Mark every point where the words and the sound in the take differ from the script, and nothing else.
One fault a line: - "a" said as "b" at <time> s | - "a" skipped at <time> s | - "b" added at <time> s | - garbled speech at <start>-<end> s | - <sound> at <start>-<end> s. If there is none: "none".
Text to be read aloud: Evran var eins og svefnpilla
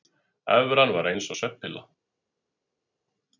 none